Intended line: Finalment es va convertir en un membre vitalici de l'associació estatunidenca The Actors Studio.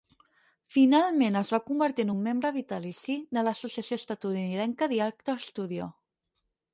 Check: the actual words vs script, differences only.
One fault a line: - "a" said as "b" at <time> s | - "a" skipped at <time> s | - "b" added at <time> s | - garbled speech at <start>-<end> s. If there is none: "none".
none